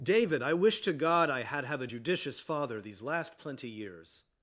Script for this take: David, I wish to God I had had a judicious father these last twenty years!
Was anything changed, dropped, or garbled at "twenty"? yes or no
yes